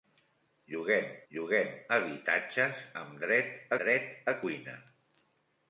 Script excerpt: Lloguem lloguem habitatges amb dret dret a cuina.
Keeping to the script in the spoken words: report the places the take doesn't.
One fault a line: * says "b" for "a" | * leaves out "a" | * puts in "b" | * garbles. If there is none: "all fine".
all fine